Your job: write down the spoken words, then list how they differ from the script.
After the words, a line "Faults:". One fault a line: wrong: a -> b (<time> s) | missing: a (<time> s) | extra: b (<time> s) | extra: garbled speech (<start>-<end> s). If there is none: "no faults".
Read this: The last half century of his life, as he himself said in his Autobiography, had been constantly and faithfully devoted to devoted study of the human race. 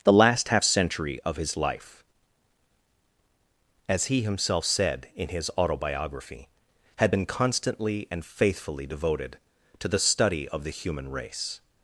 The last half century of his life, as he himself said in his Autobiography, had been constantly and faithfully devoted to the study of the human race.
Faults:
wrong: devoted -> the (9.9 s)